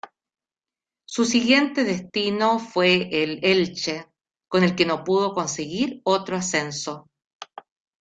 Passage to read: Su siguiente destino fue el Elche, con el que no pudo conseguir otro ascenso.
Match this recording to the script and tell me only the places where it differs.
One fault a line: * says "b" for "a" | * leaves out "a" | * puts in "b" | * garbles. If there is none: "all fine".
all fine